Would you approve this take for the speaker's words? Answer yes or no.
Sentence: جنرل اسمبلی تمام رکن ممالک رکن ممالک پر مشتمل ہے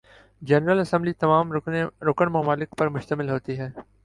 no